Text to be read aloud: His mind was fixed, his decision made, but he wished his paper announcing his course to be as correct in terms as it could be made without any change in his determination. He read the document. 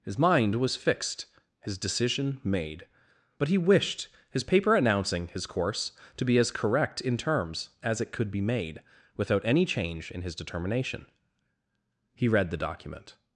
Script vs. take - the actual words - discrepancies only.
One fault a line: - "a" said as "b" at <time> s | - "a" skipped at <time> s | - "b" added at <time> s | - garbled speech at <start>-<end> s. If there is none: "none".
none